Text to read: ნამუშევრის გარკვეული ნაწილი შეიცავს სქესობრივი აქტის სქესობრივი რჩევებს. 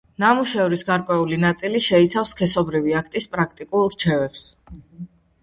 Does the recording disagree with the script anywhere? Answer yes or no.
yes